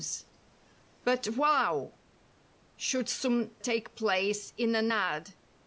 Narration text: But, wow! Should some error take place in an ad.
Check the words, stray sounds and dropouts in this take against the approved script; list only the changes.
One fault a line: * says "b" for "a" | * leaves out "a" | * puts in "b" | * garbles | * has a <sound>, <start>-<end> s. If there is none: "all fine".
* leaves out "error"